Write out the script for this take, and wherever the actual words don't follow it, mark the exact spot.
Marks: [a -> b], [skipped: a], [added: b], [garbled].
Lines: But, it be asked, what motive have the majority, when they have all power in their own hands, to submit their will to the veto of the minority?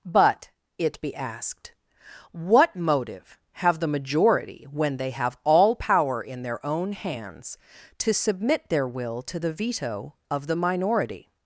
But, it be asked, what motive have the majority, when they have all power in their own hands, to submit their will to the veto of the minority?